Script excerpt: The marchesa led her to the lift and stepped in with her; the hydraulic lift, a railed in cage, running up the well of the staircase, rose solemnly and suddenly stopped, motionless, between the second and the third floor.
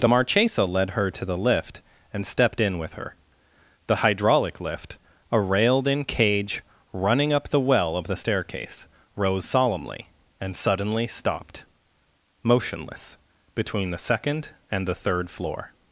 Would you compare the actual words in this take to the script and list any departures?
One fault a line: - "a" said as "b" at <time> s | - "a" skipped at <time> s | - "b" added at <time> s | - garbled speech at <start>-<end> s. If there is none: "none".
none